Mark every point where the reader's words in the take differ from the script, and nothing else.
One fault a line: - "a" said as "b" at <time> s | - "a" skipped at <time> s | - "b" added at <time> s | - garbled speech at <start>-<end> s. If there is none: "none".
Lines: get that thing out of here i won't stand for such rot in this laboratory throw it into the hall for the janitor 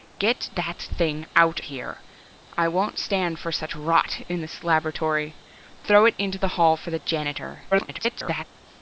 - "of" skipped at 1.6 s
- garbled speech at 7.7-8.4 s